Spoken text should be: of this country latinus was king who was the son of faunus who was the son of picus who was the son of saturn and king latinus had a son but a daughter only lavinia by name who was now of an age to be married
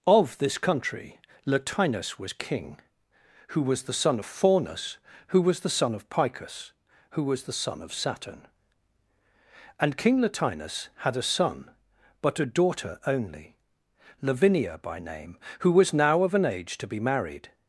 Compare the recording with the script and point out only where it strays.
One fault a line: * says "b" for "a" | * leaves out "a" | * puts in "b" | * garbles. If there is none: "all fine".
all fine